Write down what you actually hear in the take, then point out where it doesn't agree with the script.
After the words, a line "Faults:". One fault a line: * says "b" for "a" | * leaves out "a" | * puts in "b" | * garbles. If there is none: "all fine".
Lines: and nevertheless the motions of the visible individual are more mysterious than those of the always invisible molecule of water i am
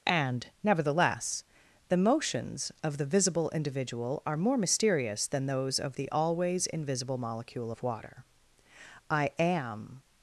and nevertheless the motions of the visible individual are more mysterious than those of the always invisible molecule of water i am
Faults:
all fine